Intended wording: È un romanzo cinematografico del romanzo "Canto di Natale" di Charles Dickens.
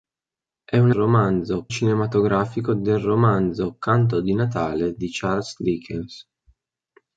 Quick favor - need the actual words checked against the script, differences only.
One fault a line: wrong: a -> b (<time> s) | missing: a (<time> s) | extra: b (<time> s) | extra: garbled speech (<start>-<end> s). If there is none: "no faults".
no faults